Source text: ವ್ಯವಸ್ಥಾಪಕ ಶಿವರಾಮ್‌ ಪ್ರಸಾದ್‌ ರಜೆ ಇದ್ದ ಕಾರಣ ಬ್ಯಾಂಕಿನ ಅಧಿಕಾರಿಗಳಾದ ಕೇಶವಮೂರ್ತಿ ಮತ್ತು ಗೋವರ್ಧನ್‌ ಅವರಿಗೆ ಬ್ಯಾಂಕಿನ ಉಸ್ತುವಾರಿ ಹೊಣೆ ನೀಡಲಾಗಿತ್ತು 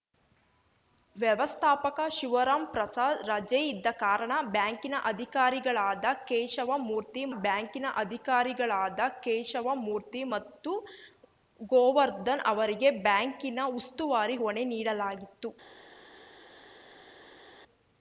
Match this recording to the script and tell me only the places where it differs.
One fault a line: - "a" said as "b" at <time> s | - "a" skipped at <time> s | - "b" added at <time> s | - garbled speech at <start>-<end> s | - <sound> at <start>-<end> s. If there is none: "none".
- "ಬ್ಯಾಂಕಿನ ಅಧಿಕಾರಿಗಳಾದ ಕೇಶವಮೂರ್ತಿ" added at 7.4 s